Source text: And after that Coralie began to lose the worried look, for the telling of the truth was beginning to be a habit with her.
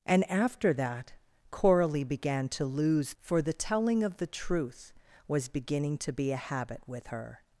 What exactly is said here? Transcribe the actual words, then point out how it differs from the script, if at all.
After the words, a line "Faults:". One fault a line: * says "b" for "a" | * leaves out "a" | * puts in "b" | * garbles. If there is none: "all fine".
And after that Coralie began to lose for the telling of the truth was beginning to be a habit with her.
Faults:
* leaves out "the worried look"